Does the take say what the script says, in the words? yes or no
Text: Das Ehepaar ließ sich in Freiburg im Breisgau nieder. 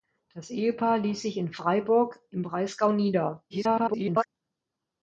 no